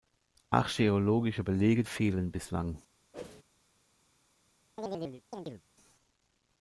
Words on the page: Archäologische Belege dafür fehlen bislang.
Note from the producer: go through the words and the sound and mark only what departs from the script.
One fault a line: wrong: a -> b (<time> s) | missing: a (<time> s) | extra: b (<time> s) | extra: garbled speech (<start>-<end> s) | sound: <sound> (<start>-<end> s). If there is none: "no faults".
missing: dafür (1.8 s)
sound: whoosh (3.1-3.4 s)
sound: chirp (4.8-5.6 s)